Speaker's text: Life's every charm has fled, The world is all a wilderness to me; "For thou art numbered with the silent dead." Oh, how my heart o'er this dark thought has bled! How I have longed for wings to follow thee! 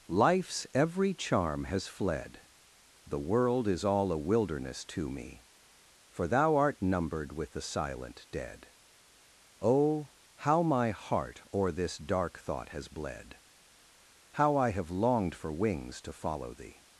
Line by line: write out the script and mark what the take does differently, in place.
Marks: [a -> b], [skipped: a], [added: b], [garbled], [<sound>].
Life's every charm has fled, The world is all a wilderness to me; "For thou art numbered with the silent dead." Oh, how my heart o'er this dark thought has bled! How I have longed for wings to follow thee!